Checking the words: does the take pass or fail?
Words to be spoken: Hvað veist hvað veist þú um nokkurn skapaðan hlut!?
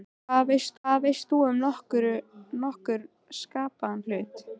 pass